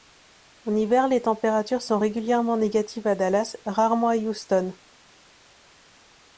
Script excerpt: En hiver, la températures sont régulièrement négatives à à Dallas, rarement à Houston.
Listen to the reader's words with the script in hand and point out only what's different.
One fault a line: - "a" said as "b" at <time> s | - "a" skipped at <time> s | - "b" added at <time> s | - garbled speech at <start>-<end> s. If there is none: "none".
- "la" said as "les" at 1.1 s
- "à" skipped at 3.1 s